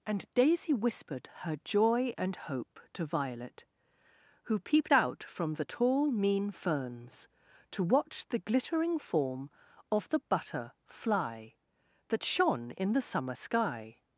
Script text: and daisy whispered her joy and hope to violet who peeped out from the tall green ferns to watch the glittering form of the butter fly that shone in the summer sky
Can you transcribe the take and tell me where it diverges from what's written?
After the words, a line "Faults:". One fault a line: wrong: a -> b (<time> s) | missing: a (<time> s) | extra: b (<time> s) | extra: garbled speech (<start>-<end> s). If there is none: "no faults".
and daisy whispered her joy and hope to violet who peeped out from the tall mean ferns to watch the glittering form of the butter fly that shone in the summer sky
Faults:
wrong: green -> mean (6.1 s)